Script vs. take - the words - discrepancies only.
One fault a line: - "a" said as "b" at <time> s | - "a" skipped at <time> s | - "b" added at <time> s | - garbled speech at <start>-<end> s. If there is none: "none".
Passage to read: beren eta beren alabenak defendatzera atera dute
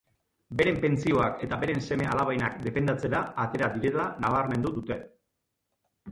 - "pentsioak" added at 0.8 s
- "seme" added at 1.9 s
- "direla nabarmendu" added at 3.8 s